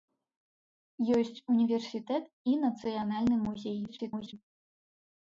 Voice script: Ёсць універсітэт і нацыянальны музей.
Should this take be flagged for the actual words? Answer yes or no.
yes